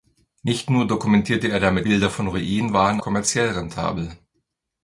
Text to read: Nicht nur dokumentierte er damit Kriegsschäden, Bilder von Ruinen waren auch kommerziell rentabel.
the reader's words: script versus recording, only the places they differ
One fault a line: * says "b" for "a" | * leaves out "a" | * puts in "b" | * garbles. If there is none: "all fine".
* leaves out "Kriegsschäden"
* leaves out "auch"